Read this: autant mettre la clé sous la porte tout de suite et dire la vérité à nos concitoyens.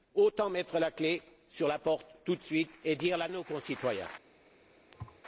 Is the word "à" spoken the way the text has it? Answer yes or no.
no